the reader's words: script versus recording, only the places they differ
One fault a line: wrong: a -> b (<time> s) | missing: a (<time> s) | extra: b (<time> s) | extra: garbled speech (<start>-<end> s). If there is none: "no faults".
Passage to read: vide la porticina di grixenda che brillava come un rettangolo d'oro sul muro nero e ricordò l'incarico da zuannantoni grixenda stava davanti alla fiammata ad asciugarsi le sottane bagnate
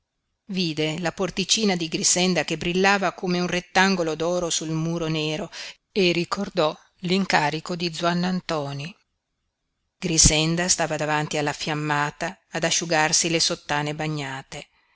wrong: da -> di (7.8 s)